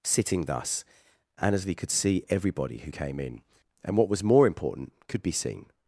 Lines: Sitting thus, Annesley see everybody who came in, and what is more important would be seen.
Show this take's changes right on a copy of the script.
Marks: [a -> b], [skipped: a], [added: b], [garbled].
Sitting thus, Annesley [added: could] see everybody who came in, and what [is -> was] more important [would -> could] be seen.